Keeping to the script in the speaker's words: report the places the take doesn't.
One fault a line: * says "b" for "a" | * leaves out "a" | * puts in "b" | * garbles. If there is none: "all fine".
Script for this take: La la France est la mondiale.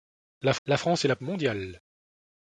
all fine